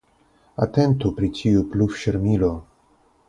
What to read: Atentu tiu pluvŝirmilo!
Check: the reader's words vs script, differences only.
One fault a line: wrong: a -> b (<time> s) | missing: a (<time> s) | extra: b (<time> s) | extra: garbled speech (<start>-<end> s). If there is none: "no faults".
extra: pri (1.2 s)